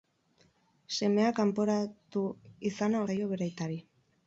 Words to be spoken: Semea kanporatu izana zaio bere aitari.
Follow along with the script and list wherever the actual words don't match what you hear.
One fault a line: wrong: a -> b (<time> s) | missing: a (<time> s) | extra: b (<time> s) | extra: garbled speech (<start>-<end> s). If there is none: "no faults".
no faults